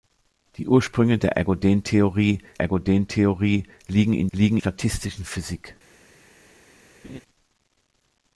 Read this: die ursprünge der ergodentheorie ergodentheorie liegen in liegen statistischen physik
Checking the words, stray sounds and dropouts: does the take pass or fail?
fail